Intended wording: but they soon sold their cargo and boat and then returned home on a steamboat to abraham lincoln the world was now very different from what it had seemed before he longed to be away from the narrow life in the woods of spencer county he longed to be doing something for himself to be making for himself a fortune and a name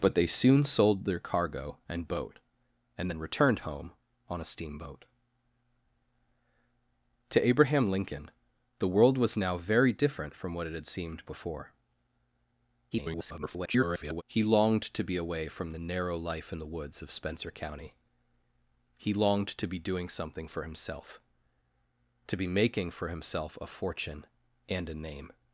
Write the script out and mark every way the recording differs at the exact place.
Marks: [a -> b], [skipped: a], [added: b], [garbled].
but they soon sold their cargo and boat and then returned home on a steamboat to abraham lincoln the world was now very different from what it had seemed before [garbled] he longed to be away from the narrow life in the woods of spencer county he longed to be doing something for himself to be making for himself a fortune and a name